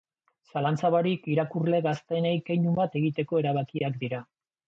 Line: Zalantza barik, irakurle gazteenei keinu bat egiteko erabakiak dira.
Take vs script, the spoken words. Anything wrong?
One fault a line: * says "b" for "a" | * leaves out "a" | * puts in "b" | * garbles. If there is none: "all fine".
all fine